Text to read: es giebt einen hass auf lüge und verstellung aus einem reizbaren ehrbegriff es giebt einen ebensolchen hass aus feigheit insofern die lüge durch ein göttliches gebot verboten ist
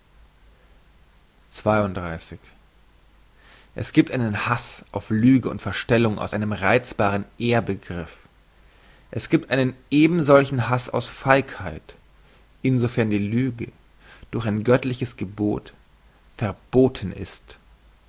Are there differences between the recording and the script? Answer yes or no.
no